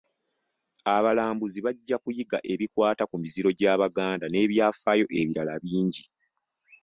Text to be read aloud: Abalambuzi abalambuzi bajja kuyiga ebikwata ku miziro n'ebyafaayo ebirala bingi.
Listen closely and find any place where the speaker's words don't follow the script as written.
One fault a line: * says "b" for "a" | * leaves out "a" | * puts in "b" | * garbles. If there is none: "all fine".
* leaves out "abalambuzi"
* puts in "gy'Abaganda"